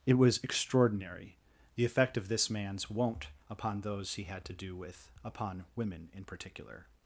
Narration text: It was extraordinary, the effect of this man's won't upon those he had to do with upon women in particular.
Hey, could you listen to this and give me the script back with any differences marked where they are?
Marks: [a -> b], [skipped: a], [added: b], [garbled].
It was extraordinary, the effect of this man's won't upon those he had to do with upon women in particular.